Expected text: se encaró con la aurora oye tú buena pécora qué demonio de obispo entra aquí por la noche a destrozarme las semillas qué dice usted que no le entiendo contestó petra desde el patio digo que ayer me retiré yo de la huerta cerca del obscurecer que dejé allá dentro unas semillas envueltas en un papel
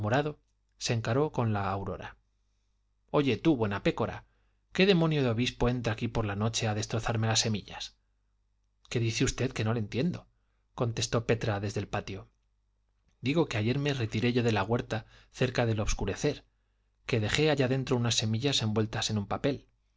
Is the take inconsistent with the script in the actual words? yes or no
no